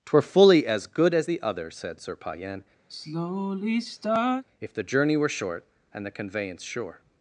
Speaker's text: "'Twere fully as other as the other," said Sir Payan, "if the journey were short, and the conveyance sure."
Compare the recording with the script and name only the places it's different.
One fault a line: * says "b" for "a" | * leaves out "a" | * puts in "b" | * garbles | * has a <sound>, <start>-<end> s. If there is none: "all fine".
* says "good" for "other"
* has a sigh, 2.9-4.4 s